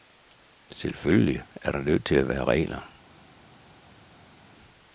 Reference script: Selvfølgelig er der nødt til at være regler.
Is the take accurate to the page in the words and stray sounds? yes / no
yes